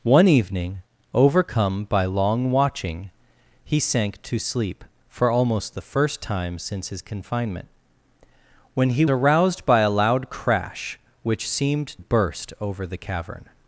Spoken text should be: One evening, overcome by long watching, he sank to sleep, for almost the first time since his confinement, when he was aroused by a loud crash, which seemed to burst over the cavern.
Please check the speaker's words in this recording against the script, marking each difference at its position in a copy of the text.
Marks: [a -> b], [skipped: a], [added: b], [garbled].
One evening, overcome by long watching, he sank to sleep, for almost the first time since his confinement, when he [skipped: was] aroused by a loud crash, which seemed [skipped: to] burst over the cavern.